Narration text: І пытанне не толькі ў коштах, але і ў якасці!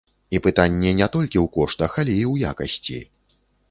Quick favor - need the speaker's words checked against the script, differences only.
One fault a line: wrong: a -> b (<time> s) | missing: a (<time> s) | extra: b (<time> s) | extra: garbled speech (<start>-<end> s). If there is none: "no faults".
no faults